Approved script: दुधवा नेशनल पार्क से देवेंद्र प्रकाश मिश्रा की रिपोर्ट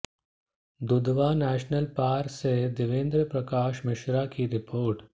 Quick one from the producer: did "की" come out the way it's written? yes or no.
yes